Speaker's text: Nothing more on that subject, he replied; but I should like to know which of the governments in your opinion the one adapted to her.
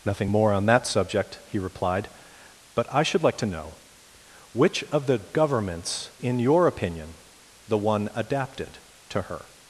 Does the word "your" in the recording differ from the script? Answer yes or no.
no